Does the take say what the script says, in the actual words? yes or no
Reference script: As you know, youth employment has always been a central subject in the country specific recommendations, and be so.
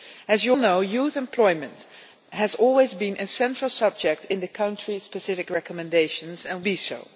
yes